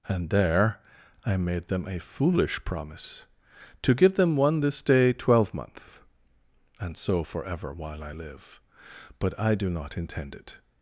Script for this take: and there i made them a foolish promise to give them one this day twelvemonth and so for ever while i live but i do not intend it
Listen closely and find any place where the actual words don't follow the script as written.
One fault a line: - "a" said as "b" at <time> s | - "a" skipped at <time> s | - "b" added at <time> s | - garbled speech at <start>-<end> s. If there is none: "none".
none